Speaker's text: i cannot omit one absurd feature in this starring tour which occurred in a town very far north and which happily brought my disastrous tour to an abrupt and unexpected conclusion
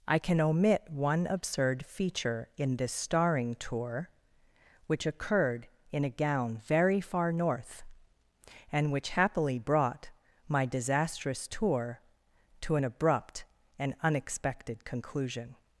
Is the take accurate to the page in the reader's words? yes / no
no